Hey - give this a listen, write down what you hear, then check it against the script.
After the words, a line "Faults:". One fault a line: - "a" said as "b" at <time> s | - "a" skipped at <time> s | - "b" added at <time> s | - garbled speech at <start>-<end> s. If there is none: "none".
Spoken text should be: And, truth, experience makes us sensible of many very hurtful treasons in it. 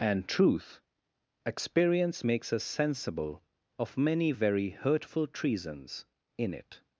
And, truth, experience makes us sensible of many very hurtful treasons in it.
Faults:
none